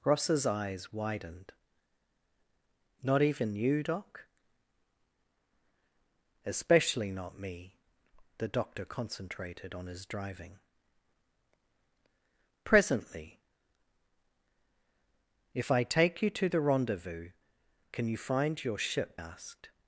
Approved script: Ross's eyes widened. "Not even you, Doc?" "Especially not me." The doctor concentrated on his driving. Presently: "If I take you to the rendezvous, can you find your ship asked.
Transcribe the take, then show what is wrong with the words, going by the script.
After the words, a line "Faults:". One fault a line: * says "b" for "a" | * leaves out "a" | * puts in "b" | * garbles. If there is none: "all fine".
Ross's eyes widened. "Not even you, Doc?" "Especially not me." The doctor concentrated on his driving. Presently: "If I take you to the rendezvous, can you find your ship asked.
Faults:
all fine